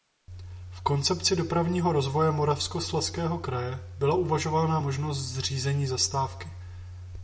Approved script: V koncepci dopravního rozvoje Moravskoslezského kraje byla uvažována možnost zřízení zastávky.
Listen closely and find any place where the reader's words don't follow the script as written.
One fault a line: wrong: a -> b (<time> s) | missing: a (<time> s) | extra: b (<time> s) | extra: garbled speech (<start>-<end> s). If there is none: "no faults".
no faults